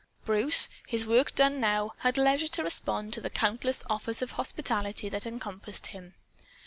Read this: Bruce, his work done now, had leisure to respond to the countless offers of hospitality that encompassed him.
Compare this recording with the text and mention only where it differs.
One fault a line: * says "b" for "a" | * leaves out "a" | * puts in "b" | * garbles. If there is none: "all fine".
all fine